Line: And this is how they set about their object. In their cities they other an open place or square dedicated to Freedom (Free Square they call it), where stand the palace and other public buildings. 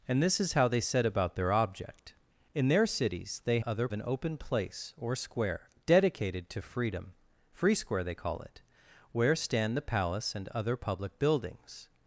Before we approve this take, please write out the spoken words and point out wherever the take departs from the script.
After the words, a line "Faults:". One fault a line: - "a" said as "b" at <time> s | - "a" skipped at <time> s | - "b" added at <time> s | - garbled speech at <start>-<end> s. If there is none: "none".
And this is how they set about their object. In their cities they other an open place or square dedicated to Freedom (Free Square they call it), where stand the palace and other public buildings.
Faults:
none